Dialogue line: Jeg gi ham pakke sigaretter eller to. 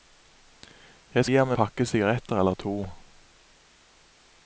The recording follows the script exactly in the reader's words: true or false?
true